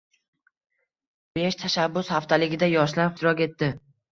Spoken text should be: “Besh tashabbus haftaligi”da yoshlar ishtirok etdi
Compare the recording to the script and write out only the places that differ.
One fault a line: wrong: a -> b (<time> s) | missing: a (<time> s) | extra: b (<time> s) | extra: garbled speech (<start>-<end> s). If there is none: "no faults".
no faults